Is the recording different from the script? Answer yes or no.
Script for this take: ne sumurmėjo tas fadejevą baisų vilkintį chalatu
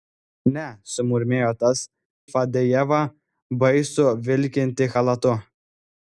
no